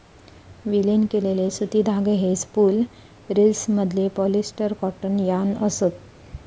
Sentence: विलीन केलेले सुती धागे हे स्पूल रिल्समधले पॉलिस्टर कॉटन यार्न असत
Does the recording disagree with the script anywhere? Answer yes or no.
no